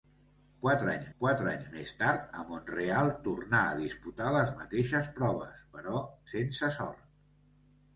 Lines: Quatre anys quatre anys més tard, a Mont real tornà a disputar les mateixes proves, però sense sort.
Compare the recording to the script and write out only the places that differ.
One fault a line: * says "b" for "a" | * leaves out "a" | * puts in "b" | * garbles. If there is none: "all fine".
all fine